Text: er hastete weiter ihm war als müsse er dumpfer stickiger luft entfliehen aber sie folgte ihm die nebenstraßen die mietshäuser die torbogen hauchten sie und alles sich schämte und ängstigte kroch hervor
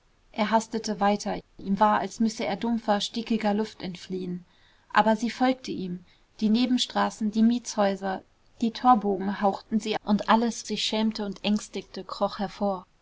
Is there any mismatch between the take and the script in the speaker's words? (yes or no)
no